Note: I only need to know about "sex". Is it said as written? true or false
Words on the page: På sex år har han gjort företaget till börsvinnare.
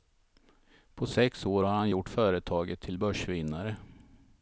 true